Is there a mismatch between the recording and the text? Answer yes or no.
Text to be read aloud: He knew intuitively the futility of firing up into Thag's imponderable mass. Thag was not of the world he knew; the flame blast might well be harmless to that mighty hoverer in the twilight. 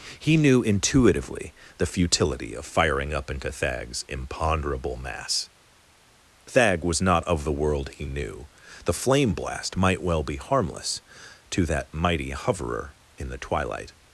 no